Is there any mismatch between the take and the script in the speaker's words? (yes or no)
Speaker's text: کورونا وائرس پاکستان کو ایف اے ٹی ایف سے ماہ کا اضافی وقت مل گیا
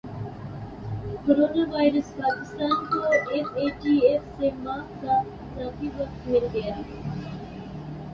no